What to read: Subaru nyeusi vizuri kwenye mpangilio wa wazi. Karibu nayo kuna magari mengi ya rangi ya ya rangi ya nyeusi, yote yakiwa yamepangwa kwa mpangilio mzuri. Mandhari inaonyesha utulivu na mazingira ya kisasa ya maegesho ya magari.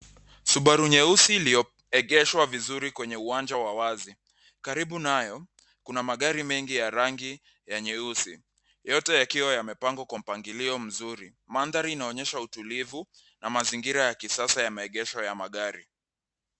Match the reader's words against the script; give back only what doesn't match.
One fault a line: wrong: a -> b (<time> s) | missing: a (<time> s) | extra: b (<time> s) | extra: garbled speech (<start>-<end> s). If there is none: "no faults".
extra: iliyoegeshwa (1.4 s)
wrong: mpangilio -> uwanja (3.2 s)
missing: ya rangi ya (7.8 s)